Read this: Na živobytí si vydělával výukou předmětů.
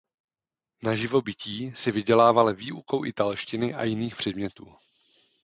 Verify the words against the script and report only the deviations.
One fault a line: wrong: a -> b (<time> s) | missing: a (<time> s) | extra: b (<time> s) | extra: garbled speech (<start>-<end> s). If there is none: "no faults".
extra: italštiny a jiných (3.0 s)